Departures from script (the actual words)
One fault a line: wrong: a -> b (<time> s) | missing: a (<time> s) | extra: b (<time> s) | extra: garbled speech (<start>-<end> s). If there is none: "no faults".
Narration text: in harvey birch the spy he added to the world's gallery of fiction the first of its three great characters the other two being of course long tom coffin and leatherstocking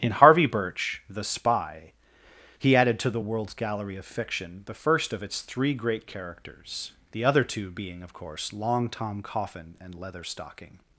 no faults